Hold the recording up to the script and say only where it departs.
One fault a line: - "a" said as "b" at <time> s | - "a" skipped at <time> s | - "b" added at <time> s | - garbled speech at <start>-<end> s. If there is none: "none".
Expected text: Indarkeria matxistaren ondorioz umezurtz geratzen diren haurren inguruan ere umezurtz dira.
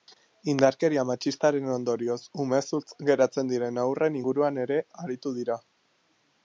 - "umezurtz" said as "aritu" at 5.1 s